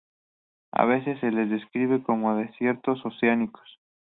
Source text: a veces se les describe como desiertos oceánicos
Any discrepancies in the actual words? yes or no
no